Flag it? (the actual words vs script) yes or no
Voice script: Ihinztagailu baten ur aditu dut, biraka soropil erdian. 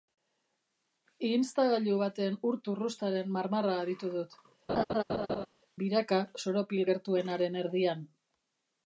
yes